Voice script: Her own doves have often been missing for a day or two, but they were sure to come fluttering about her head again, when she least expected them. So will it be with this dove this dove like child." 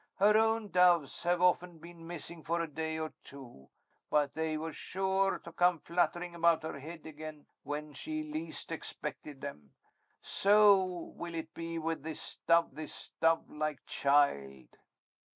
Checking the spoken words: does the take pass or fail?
pass